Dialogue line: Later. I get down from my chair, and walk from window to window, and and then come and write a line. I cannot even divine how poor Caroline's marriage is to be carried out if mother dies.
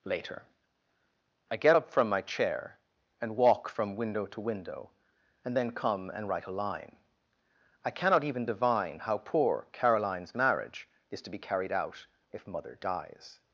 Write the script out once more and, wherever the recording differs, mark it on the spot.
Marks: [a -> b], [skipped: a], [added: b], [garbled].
Later. I get [down -> up] from my chair, and walk from window to window, and [skipped: and] then come and write a line. I cannot even divine how poor Caroline's marriage is to be carried out if mother dies.